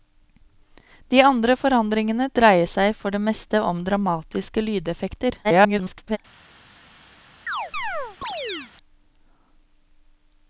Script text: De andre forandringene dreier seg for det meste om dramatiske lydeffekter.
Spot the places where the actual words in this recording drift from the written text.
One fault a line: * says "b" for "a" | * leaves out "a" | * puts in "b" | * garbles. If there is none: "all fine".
* garbles